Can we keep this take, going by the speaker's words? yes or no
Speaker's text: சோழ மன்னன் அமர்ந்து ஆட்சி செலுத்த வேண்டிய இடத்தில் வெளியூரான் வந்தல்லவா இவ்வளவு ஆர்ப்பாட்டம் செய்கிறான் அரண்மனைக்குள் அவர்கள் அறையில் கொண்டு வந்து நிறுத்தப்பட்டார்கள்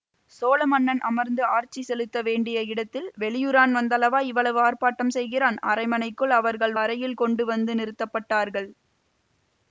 yes